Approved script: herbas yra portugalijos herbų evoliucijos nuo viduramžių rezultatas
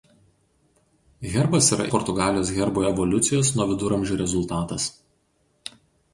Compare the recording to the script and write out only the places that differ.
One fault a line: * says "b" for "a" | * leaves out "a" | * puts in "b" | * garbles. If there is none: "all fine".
all fine